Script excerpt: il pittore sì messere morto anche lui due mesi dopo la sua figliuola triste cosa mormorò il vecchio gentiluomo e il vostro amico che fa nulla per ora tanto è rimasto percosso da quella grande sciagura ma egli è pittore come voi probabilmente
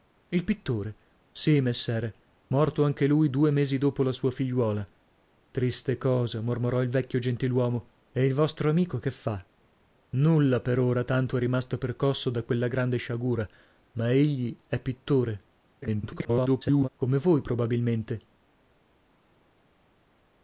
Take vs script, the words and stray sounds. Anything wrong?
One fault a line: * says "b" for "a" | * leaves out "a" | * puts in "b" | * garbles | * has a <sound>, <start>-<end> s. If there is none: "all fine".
* garbles